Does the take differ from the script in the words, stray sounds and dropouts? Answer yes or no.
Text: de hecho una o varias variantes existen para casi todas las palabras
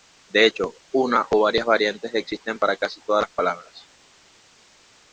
no